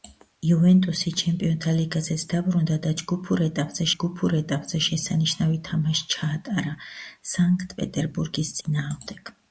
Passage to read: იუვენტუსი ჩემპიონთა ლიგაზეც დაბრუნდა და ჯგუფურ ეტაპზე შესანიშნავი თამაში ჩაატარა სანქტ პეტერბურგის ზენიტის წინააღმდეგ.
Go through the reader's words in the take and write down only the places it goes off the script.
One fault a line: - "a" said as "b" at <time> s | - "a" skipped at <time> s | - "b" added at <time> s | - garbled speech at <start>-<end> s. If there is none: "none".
- "ჯგუფურ ეტაპზე" added at 3.9 s
- "ზენიტის" skipped at 8.6 s